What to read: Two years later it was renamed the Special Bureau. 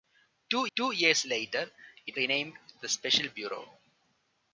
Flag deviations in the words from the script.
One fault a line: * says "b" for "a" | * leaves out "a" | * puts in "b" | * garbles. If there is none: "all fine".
* puts in "two"
* leaves out "was"